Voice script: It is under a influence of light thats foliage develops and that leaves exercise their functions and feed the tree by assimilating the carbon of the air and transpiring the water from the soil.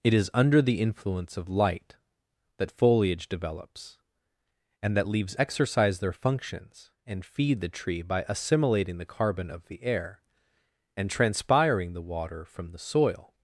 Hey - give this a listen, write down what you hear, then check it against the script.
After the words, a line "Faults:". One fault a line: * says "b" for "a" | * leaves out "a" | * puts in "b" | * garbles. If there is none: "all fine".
It is under the influence of light that foliage develops and that leaves exercise their functions and feed the tree by assimilating the carbon of the air and transpiring the water from the soil.
Faults:
* says "the" for "a"
* says "that" for "thats"